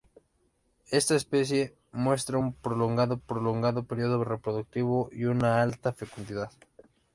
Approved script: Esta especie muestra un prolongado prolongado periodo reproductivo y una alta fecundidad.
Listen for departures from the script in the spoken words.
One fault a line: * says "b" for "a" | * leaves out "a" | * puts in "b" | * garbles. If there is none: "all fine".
all fine